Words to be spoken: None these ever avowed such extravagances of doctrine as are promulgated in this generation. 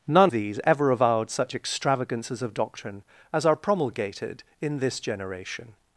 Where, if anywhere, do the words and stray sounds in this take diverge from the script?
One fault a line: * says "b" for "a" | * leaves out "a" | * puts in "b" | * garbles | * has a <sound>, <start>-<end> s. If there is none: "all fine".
all fine